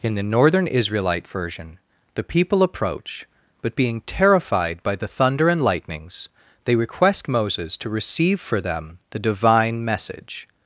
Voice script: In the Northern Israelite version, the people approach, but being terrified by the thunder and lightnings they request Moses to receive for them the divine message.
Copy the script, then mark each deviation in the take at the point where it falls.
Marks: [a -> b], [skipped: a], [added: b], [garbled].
In the Northern Israelite version, the people approach, but being terrified by the thunder and lightnings they request Moses to receive for them the divine message.